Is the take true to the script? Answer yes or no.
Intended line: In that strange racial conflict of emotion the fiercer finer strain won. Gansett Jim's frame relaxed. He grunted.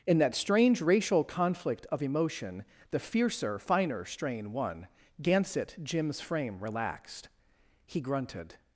yes